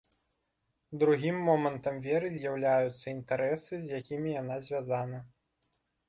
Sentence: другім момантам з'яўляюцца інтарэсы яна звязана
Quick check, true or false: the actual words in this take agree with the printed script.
false